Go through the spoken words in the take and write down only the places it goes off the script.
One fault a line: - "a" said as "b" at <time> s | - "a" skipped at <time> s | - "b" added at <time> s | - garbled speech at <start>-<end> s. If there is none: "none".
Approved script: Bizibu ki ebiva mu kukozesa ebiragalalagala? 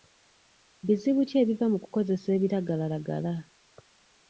none